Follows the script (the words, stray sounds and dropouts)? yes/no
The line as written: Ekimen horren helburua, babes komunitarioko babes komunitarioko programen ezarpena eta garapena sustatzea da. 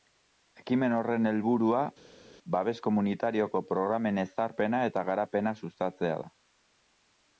no